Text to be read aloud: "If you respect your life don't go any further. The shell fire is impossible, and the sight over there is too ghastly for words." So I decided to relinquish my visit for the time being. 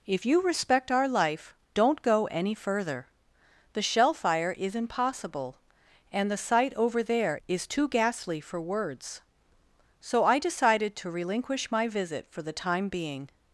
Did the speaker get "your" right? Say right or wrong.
wrong